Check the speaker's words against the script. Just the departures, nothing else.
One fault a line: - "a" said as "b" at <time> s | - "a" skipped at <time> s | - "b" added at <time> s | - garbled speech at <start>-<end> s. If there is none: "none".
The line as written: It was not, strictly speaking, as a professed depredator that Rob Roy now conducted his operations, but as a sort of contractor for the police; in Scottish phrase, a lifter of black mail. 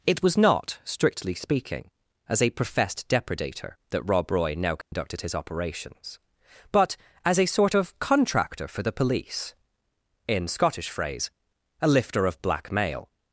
none